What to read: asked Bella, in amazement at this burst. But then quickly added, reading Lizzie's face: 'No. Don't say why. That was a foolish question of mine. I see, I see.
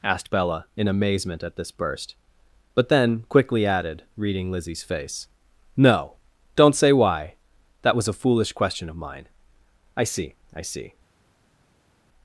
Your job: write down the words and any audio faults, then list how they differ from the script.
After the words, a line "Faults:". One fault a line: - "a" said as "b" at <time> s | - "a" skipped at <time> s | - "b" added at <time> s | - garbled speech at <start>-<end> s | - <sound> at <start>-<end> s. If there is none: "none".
asked Bella, in amazement at this burst. But then quickly added, reading Lizzie's face: 'No. Don't say why. That was a foolish question of mine. I see, I see.
Faults:
none